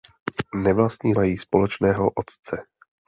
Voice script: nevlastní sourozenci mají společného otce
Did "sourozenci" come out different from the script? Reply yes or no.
yes